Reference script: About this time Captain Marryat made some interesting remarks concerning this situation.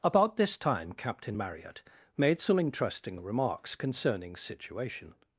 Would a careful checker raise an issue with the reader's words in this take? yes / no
yes